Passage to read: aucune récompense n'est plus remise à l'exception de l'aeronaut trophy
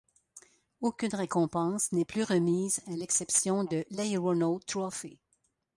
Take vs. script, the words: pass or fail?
pass